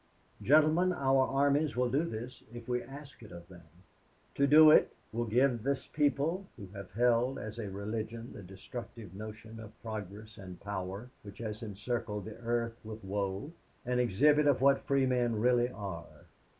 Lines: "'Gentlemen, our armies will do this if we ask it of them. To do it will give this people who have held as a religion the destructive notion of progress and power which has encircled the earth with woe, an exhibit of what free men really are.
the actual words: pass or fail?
pass